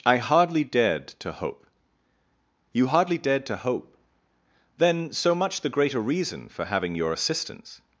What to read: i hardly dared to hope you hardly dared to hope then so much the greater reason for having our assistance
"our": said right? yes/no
no